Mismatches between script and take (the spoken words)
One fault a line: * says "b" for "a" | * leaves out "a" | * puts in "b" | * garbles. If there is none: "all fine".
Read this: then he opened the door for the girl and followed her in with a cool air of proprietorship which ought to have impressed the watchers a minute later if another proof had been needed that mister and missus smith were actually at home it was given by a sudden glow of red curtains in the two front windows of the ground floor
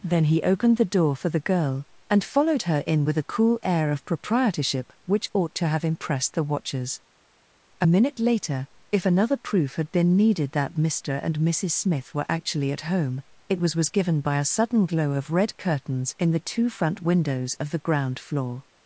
* puts in "was"